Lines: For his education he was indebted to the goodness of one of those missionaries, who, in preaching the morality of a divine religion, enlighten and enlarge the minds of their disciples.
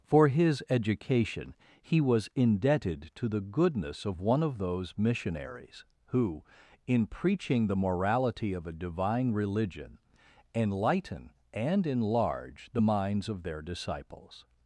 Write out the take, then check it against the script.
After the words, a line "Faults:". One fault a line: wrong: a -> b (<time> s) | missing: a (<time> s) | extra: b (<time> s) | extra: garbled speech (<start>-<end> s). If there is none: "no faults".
For his education he was indebted to the goodness of one of those missionaries, who, in preaching the morality of a divine religion, enlighten and enlarge the minds of their disciples.
Faults:
no faults